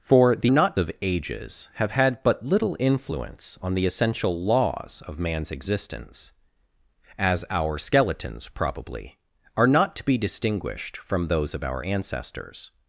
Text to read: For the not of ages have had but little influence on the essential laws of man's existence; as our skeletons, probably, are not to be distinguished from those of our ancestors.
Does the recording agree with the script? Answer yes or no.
yes